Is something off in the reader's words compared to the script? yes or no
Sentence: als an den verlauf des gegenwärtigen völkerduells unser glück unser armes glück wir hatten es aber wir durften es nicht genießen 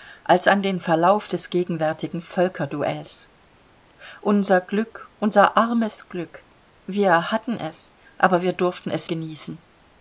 yes